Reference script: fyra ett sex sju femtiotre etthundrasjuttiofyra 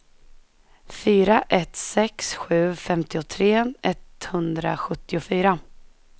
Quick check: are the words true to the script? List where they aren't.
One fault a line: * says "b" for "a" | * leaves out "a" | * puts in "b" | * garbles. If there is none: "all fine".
all fine